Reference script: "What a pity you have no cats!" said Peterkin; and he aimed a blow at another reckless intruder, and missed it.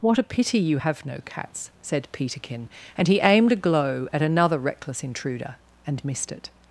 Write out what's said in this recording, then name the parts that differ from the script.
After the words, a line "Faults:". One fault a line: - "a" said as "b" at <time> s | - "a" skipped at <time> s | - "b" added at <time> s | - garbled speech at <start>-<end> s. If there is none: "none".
"What a pity you have no cats!" said Peterkin; and he aimed a glow at another reckless intruder, and missed it.
Faults:
- "blow" said as "glow" at 3.6 s